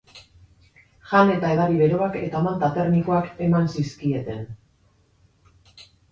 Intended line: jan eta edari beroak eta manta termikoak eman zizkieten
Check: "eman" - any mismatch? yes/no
no